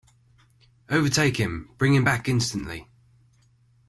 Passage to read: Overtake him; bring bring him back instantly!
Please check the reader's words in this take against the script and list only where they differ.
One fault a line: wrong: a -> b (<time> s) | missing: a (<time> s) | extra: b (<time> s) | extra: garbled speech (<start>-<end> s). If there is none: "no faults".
missing: bring (1.9 s)